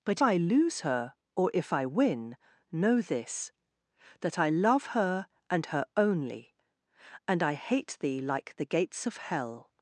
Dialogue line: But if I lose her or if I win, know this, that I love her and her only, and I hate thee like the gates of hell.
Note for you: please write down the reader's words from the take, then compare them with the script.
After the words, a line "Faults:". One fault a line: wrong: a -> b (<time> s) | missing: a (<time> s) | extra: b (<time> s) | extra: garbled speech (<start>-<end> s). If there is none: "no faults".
But I lose her or if I win, know this, that I love her and her only, and I hate thee like the gates of hell.
Faults:
missing: if (0.2 s)